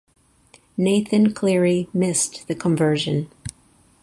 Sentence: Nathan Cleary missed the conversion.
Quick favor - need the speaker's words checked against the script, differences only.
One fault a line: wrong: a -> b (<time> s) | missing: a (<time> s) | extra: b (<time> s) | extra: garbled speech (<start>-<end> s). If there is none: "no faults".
no faults